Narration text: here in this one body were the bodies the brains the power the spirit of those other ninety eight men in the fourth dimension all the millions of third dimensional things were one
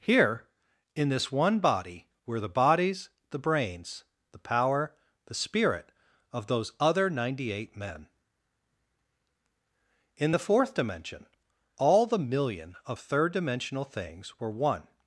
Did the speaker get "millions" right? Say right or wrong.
wrong